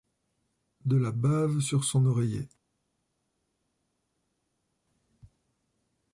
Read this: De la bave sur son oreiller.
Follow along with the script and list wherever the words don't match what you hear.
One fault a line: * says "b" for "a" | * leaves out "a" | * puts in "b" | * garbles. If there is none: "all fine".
all fine